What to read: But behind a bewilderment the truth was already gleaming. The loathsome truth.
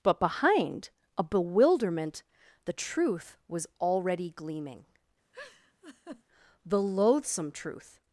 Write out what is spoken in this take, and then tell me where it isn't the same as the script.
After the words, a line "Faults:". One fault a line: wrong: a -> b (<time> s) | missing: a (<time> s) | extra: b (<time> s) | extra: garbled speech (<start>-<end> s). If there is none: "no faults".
But behind a bewilderment the truth was already gleaming. The loathsome truth.
Faults:
no faults